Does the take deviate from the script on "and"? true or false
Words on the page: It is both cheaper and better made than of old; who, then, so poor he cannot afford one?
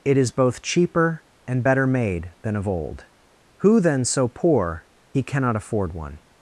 false